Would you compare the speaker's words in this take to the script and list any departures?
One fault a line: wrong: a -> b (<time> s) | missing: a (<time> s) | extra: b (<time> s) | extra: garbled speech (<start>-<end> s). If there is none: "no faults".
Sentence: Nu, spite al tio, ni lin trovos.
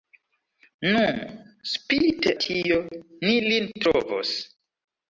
missing: al (2.3 s)